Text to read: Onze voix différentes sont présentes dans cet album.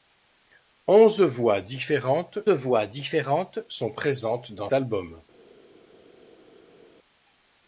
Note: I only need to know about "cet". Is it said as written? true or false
false